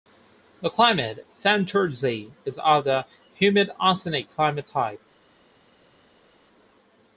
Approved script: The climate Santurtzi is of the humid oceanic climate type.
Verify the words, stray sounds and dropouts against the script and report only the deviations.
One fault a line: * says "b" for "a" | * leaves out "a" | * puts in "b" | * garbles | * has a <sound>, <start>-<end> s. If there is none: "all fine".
all fine